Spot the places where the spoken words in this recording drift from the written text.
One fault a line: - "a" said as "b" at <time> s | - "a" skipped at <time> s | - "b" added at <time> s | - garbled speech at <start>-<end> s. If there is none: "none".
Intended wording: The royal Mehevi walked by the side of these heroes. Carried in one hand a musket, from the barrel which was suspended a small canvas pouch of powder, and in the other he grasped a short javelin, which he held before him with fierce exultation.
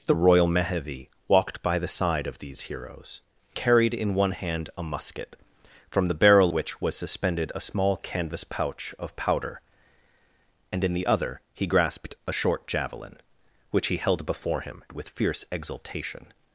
none